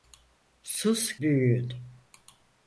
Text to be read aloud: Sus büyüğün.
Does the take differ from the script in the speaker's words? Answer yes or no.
no